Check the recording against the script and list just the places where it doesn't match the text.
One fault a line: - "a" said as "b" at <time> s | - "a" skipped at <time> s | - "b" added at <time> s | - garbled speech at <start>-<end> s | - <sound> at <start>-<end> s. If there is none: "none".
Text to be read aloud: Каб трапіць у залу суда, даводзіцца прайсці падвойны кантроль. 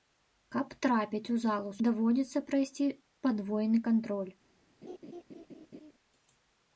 - "суда" skipped at 1.7 s
- laugh at 4.8-5.9 s